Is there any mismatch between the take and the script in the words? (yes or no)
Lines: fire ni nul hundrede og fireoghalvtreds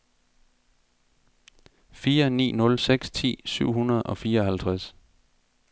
yes